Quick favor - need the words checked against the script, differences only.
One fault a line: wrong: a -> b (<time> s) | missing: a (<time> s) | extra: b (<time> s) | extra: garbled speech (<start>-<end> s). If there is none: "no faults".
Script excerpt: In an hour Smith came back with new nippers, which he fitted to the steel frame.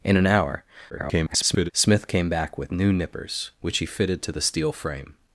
extra: garbled speech (0.9-1.7 s)